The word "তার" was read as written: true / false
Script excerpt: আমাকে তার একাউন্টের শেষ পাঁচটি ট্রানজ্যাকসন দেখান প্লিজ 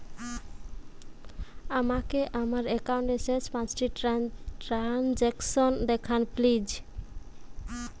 false